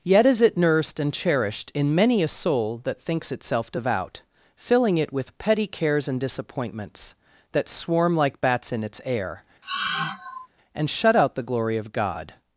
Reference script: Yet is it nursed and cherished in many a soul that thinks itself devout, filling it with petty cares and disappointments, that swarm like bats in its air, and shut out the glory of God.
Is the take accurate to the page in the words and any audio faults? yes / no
no